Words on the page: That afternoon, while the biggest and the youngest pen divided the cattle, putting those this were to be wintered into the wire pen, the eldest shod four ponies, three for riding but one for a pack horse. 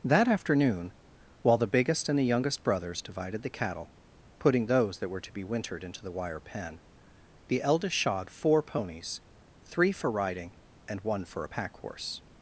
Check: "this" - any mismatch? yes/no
yes